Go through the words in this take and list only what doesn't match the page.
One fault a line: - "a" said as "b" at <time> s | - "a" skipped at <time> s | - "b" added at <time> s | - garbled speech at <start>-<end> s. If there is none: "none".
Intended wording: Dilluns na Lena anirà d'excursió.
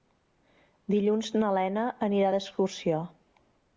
none